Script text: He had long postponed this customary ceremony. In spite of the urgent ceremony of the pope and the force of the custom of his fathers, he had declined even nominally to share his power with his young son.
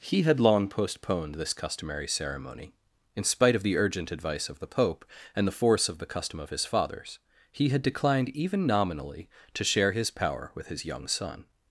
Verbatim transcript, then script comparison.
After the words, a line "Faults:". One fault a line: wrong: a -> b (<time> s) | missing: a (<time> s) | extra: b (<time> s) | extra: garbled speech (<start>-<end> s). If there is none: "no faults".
He had long postponed this customary ceremony. In spite of the urgent advice of the pope and the force of the custom of his fathers, he had declined even nominally to share his power with his young son.
Faults:
wrong: ceremony -> advice (4.1 s)